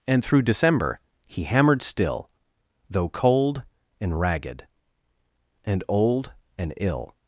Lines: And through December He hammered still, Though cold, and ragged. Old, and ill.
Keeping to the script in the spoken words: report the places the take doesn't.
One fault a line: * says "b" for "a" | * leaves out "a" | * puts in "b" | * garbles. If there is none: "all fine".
* puts in "And"